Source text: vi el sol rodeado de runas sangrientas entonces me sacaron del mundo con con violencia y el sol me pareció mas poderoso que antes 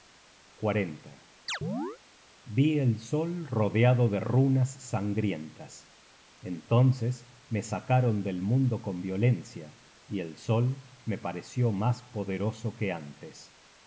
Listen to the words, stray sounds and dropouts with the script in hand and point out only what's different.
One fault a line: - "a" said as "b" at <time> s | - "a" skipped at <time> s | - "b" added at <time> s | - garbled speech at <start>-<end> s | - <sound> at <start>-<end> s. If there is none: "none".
- chirp at 1.5-2.0 s
- "con" skipped at 9.0 s